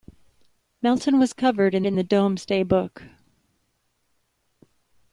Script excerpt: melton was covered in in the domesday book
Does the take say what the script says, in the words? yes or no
yes